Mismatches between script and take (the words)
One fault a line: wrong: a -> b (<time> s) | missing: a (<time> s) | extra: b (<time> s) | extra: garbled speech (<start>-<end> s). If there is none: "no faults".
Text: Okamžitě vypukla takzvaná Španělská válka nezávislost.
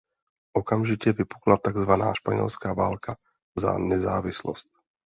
extra: za (3.6 s)